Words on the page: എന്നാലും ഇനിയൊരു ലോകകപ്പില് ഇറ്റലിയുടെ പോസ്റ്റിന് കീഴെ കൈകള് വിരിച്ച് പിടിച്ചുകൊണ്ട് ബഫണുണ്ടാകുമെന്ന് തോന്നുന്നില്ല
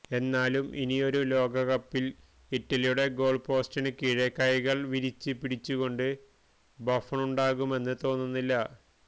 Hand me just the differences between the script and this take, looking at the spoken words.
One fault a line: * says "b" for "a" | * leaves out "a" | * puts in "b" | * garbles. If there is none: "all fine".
* puts in "ഗോള്"